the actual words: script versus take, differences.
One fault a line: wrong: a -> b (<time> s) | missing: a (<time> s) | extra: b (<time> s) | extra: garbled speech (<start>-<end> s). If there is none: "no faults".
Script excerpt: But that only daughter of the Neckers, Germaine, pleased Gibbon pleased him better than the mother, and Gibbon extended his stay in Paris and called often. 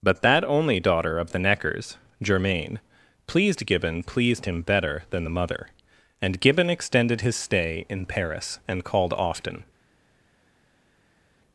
no faults